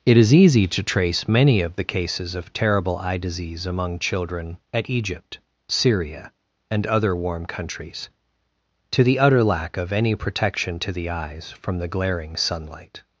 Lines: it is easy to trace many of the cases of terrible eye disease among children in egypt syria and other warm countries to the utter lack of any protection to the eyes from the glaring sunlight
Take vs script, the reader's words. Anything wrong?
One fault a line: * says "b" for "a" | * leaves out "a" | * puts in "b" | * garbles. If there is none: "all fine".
* says "at" for "in"